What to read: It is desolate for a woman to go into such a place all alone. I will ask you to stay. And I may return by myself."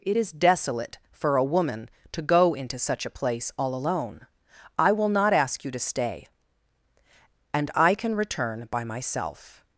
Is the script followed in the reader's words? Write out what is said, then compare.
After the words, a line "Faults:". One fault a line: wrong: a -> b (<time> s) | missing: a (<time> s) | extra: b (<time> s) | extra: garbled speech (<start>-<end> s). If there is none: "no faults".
It is desolate for a woman to go into such a place all alone. I will not ask you to stay. And I can return by myself."
Faults:
extra: not (5.1 s)
wrong: may -> can (7.9 s)